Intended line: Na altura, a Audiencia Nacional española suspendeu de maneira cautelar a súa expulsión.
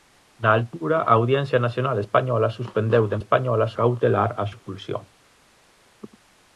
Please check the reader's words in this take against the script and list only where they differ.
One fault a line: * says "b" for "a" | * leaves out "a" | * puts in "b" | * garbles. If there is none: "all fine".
* says "española" for "maneira"
* leaves out "súa"